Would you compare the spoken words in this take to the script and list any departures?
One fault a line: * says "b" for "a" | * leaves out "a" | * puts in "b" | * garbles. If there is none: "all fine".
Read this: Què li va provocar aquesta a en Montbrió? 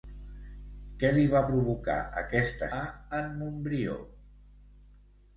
all fine